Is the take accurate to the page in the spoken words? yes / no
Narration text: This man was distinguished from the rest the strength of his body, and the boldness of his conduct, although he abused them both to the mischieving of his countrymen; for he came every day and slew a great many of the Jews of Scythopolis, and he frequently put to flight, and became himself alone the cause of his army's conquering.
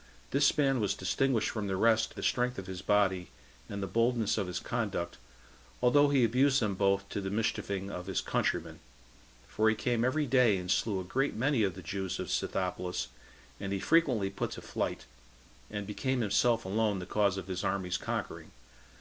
yes